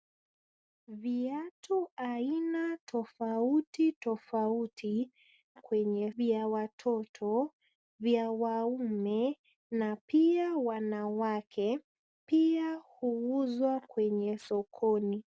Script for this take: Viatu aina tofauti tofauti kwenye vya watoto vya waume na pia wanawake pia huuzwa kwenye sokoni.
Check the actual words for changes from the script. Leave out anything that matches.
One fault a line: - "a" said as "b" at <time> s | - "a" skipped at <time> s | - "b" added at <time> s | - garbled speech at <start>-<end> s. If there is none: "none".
none